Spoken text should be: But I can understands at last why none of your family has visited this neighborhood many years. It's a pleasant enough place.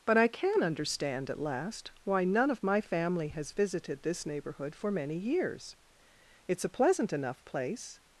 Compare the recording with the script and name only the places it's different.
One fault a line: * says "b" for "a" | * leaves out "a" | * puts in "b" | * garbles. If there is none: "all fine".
* says "understand" for "understands"
* says "my" for "your"
* puts in "for"